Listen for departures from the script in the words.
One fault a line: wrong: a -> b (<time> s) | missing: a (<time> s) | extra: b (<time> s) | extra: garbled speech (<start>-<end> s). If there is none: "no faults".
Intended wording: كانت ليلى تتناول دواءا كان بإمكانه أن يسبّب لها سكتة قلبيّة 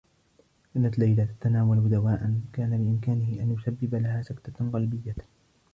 no faults